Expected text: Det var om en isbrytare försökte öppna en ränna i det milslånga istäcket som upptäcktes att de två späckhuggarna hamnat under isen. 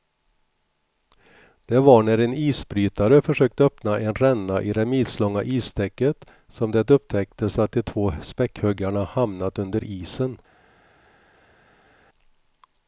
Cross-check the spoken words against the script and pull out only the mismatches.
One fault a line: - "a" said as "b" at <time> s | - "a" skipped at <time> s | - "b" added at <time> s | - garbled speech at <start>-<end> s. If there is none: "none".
- "om" said as "när" at 2.0 s
- "det" added at 6.7 s